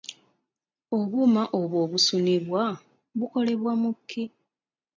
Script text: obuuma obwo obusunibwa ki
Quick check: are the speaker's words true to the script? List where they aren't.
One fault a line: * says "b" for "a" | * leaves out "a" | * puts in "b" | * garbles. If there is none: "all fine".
* puts in "bukolebwa mu"